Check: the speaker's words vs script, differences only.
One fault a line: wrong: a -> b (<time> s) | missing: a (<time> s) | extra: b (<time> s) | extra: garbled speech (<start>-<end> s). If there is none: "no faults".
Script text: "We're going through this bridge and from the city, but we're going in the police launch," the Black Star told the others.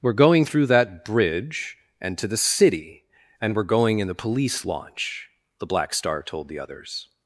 wrong: this -> that (0.7 s)
wrong: from -> to (2.2 s)
wrong: but -> and (3.4 s)